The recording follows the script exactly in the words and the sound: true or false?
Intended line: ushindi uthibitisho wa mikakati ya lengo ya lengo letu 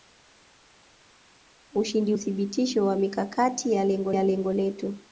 true